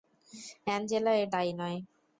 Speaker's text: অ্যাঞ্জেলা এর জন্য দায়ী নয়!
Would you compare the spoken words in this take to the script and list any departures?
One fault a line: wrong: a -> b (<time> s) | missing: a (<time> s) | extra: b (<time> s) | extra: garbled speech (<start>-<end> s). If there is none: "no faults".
missing: জন্য (1.3 s)